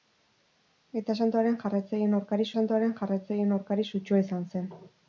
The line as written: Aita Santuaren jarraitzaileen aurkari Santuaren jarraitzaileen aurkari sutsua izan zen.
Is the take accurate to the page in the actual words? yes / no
yes